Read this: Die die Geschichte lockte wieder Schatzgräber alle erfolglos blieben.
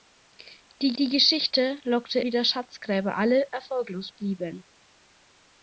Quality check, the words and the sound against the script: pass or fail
pass